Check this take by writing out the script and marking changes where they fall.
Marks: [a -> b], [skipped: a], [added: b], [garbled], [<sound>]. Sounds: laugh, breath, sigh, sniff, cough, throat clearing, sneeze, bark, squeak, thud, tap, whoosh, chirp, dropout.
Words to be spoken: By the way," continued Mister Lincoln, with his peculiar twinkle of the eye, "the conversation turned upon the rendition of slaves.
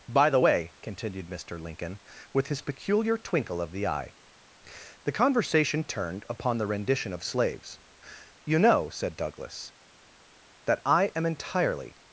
By the way," continued Mister Lincoln, with his peculiar twinkle of the eye, "the conversation turned upon the rendition of slaves. [added: You know said Douglas that I am entirely]